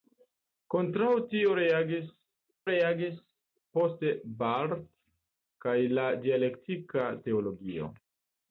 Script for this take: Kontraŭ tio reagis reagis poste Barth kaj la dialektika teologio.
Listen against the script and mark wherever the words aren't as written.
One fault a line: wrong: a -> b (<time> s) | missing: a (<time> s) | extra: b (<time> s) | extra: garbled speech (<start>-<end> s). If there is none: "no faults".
no faults